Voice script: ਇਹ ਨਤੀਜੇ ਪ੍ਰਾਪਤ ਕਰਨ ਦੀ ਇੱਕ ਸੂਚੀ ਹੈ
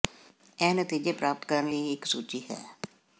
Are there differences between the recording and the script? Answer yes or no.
no